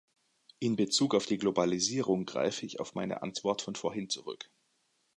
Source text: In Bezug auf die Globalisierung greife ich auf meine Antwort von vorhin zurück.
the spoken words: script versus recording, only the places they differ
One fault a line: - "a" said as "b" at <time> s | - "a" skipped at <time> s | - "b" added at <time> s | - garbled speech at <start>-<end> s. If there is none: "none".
none